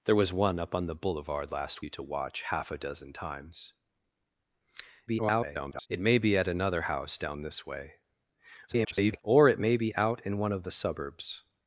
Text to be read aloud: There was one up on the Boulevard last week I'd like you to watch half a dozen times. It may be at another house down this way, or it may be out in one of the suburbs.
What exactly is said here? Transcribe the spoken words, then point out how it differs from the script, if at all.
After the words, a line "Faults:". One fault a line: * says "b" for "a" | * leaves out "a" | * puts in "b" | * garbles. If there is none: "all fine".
There was one up on the Boulevard last you to watch half a dozen times. [garbled] It may be at another house down this way, [garbled] or it may be out in one of the suburbs.
Faults:
* leaves out "week I'd like"
* garbles
* garbles